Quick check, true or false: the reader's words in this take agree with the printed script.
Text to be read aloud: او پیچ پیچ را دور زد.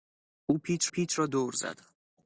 true